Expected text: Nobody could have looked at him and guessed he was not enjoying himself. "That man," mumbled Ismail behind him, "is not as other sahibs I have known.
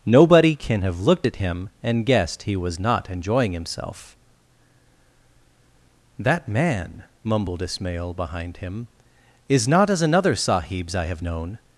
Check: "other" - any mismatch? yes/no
yes